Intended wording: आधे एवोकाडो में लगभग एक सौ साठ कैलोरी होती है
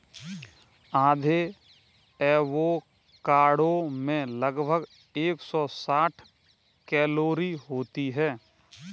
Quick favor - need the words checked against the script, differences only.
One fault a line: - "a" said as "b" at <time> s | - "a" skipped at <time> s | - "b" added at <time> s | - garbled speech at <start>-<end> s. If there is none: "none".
none